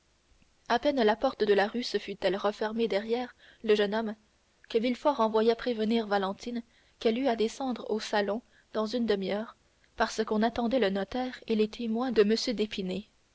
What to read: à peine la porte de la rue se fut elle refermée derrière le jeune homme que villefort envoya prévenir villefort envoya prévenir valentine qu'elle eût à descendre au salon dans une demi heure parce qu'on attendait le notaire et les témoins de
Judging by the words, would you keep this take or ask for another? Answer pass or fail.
fail